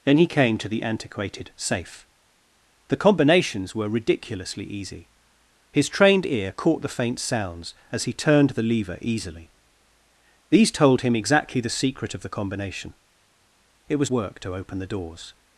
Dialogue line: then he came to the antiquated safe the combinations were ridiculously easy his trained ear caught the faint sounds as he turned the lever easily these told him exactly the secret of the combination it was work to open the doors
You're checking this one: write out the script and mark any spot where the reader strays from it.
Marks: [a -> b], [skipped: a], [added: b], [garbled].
then he came to the antiquated safe the combinations were ridiculously easy his trained ear caught the faint sounds as he turned the lever easily these told him exactly the secret of the combination it was work to open the doors